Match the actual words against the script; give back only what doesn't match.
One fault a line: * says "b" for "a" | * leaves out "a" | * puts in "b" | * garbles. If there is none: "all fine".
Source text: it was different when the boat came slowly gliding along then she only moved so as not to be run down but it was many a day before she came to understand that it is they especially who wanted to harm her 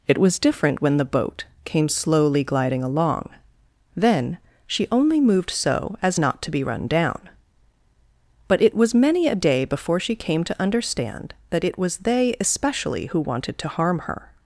* says "was" for "is"